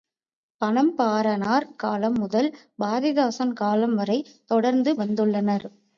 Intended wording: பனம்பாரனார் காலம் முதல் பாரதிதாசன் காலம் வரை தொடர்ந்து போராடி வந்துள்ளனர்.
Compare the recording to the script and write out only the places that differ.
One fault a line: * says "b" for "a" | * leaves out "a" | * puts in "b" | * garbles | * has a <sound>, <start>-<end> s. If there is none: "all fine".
* leaves out "போராடி"